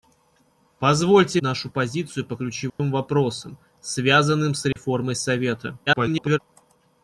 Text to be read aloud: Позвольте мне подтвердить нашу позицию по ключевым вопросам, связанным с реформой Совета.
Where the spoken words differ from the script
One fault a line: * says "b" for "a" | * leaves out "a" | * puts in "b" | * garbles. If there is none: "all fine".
* leaves out "мне подтвердить"
* garbles